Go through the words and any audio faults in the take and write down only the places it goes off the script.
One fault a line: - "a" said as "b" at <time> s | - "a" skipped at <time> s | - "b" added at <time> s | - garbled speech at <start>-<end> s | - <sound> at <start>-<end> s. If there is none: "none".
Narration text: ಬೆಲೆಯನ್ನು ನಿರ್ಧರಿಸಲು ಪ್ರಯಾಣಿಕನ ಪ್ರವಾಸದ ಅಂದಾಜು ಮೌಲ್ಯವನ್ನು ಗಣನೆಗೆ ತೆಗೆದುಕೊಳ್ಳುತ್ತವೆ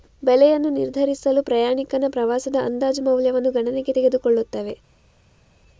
none